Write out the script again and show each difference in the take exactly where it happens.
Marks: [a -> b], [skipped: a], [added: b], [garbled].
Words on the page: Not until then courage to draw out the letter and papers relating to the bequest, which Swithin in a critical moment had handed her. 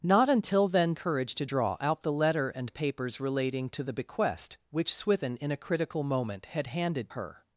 Not until then courage to draw out the letter and papers relating to the bequest, which Swithin in a critical moment had handed her.